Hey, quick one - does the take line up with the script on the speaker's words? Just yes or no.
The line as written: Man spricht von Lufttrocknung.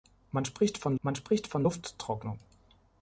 no